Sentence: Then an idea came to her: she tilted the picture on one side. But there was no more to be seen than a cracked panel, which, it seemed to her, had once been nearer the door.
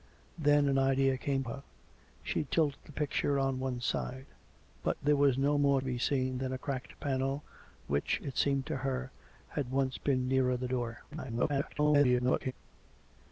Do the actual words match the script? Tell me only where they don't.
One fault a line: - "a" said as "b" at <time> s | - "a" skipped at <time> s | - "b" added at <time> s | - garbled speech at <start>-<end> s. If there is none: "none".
- "to" skipped at 1.4 s
- "to" skipped at 5.8 s
- garbled speech at 11.1-12.5 s